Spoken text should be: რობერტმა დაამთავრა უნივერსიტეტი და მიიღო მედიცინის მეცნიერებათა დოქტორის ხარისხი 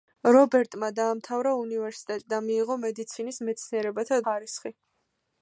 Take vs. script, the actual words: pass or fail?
fail